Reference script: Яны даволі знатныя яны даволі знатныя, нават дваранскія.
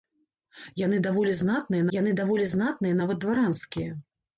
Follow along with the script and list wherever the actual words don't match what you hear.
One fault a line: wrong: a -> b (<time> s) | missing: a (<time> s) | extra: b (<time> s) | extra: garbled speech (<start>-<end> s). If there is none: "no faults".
no faults